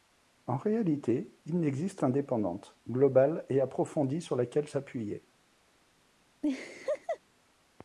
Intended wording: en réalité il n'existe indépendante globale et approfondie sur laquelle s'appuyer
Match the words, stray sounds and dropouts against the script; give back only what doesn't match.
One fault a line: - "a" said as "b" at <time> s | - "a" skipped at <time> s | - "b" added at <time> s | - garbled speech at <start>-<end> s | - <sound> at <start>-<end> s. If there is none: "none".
- laugh at 6.4-7.2 s